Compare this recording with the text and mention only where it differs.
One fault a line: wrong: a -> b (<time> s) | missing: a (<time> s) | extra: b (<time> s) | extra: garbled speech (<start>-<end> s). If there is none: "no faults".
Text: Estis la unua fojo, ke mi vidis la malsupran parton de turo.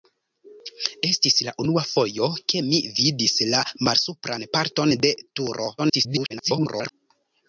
extra: garbled speech (5.8-6.9 s)